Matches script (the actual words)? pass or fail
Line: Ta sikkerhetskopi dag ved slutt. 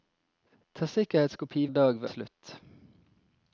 pass